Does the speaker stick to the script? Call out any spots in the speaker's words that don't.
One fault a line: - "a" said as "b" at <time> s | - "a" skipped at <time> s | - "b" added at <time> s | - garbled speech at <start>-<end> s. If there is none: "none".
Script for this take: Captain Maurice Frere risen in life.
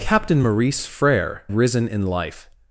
none